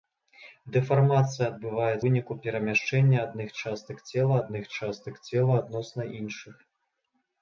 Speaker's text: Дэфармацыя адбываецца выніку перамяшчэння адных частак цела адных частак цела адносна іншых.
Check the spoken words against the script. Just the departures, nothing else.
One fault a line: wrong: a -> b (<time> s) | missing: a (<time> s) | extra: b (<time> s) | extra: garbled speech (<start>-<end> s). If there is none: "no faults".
no faults